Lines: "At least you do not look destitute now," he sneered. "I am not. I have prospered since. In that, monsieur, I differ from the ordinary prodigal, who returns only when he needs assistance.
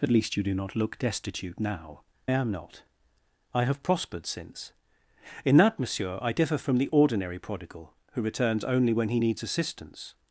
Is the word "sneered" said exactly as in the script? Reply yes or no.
no